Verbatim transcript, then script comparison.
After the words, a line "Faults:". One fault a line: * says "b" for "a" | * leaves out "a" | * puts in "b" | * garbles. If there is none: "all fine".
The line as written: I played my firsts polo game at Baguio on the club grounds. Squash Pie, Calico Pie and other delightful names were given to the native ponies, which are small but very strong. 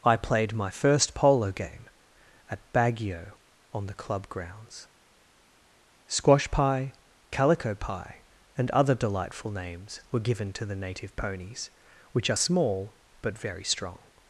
I played my first polo game at Baguio on the club grounds. Squash Pie, Calico Pie and other delightful names were given to the native ponies, which are small but very strong.
Faults:
* says "first" for "firsts"